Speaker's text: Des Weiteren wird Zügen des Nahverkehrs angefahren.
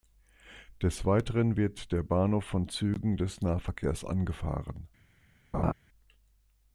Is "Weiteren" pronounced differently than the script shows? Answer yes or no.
no